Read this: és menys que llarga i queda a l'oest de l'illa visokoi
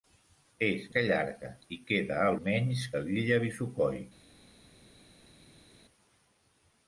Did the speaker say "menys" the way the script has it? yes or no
no